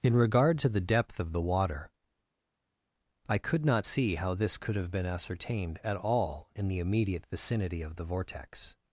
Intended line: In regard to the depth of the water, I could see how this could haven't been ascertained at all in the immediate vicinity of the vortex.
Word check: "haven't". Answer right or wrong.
wrong